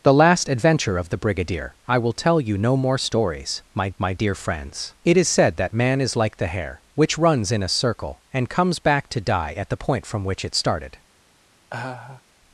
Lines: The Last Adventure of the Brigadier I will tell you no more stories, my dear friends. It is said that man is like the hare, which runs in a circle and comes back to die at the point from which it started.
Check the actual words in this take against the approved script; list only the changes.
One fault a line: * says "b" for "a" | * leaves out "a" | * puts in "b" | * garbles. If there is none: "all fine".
* puts in "my"